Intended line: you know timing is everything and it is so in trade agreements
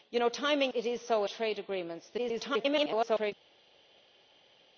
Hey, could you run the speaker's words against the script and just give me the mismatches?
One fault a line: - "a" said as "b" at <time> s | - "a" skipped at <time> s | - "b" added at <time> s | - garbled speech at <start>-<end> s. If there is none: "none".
- "is everything and" skipped at 0.7 s
- "in" skipped at 1.2 s
- garbled speech at 2.2-3.3 s